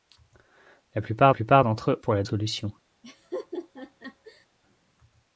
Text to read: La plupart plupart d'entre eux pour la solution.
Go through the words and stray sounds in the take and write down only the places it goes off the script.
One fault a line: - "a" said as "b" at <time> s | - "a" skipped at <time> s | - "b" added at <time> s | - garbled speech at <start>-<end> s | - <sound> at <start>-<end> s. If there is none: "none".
- laugh at 3.0-4.5 s